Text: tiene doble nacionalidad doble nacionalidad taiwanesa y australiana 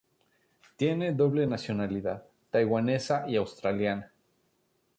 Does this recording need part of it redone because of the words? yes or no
yes